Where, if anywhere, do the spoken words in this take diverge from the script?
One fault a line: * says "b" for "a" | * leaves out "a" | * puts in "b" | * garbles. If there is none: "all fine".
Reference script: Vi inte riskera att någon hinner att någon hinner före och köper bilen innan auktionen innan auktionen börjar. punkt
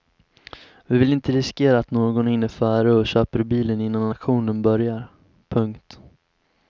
* puts in "vill"
* leaves out "att någon hinner"
* leaves out "innan auktionen"